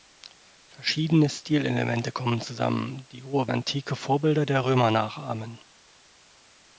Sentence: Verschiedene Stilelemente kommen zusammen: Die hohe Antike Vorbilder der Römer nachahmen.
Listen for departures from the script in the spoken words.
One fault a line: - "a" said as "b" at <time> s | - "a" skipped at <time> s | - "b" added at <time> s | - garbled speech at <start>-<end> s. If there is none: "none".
none